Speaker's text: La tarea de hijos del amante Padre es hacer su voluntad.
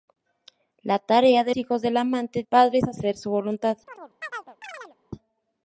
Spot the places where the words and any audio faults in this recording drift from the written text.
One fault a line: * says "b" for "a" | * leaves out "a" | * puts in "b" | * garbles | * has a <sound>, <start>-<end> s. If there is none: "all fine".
* has a chirp, 3.9-5.0 s